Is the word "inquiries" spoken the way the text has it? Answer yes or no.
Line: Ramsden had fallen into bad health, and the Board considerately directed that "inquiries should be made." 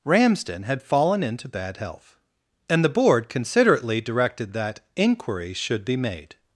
no